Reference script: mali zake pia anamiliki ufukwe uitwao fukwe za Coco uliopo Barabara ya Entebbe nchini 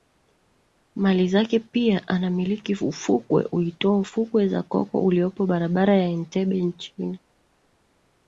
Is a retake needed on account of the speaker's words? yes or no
no